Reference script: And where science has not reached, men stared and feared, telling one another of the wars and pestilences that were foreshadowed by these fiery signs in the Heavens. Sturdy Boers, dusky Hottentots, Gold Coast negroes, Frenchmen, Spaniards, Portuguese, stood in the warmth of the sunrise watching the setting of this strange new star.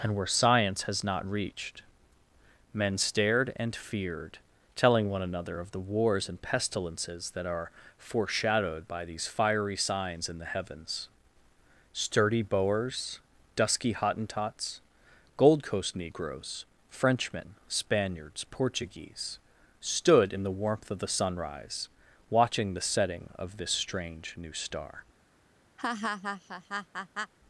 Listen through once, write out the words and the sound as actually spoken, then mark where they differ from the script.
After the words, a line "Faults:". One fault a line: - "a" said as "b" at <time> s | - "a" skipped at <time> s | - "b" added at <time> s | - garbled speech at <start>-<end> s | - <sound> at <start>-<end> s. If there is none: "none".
And where science has not reached, men stared and feared, telling one another of the wars and pestilences that are foreshadowed by these fiery signs in the Heavens. Sturdy Boers, dusky Hottentots, Gold Coast negroes, Frenchmen, Spaniards, Portuguese, stood in the warmth of the sunrise watching the setting of this strange new star.
Faults:
- "were" said as "are" at 7.5 s
- laugh at 25.8-27.3 s